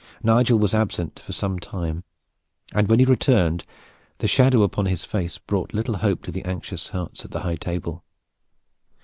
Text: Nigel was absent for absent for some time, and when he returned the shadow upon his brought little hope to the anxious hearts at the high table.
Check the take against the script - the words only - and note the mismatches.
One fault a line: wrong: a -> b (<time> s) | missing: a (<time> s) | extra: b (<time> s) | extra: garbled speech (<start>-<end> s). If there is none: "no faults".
missing: absent for (1.3 s)
extra: face (5.0 s)